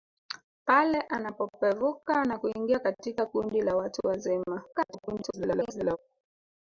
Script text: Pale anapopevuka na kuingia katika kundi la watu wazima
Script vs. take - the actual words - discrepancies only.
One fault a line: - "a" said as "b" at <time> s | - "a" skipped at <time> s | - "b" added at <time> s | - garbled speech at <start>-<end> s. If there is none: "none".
- garbled speech at 4.7-6.0 s